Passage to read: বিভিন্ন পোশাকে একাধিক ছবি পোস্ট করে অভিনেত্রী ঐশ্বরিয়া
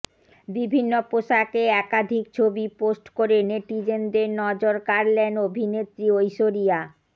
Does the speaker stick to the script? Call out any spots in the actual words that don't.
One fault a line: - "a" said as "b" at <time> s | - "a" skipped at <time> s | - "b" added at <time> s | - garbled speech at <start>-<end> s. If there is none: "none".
- "নেটিজেনদের নজর কাড়লেন" added at 3.5 s